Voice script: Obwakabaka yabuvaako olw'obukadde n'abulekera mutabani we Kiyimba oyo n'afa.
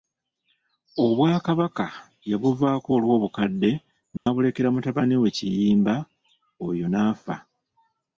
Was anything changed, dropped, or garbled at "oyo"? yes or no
no